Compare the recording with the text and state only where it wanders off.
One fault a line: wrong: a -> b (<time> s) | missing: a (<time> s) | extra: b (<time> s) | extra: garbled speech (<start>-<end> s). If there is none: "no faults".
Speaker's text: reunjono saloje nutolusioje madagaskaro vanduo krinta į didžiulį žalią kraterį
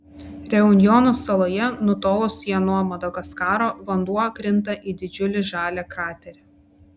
extra: nuo (2.6 s)